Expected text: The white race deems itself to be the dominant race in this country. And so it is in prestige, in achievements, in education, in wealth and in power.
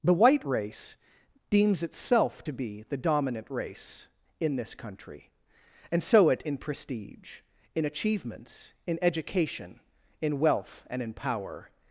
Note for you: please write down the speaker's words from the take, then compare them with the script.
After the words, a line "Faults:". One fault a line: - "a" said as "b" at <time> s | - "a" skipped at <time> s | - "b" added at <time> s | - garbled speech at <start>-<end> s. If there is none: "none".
The white race deems itself to be the dominant race in this country. And so it in prestige, in achievements, in education, in wealth and in power.
Faults:
- "is" skipped at 6.4 s